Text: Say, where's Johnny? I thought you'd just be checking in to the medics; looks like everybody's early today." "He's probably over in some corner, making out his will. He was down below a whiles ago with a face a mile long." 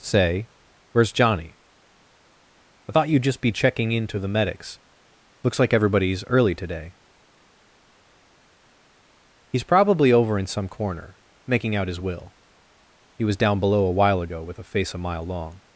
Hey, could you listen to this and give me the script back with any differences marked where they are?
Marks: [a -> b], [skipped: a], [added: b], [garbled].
Say, where's Johnny? I thought you'd just be checking in to the medics; looks like everybody's early today." "He's probably over in some corner, making out his will. He was down below a [whiles -> while] ago with a face a mile long."